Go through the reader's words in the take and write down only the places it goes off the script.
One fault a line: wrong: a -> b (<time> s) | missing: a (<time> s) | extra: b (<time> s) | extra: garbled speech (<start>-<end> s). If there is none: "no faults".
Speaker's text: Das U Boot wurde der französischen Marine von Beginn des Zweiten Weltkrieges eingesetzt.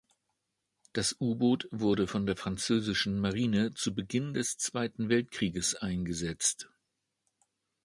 extra: von (2.0 s)
wrong: von -> zu (3.7 s)